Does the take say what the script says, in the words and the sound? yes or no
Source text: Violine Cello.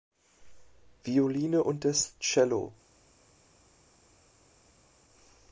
no